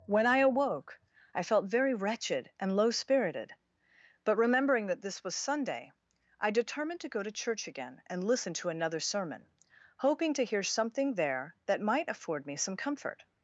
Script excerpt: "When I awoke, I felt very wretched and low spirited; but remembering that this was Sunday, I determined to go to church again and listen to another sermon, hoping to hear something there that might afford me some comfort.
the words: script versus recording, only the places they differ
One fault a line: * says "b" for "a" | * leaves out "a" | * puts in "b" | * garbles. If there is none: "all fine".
all fine